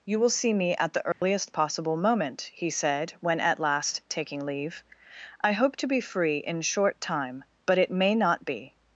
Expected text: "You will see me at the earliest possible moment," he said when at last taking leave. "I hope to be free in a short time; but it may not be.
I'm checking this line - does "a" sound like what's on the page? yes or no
no